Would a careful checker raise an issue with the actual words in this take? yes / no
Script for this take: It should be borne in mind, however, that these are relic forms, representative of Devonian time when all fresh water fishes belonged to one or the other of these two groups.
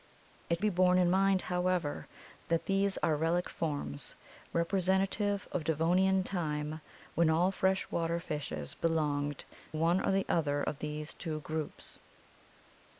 yes